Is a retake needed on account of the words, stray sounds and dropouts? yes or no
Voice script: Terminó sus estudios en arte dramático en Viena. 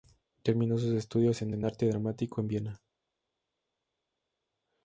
yes